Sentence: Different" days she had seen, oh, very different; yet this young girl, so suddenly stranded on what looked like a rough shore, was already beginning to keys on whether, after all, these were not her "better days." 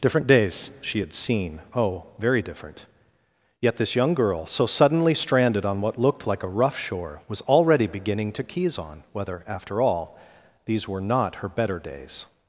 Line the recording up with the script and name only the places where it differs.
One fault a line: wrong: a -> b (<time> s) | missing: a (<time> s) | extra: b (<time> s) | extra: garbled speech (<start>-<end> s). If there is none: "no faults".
no faults